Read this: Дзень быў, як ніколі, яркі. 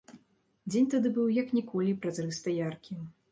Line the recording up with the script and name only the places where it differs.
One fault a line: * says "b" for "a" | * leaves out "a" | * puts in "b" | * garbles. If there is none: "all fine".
* puts in "тады"
* puts in "празрыста"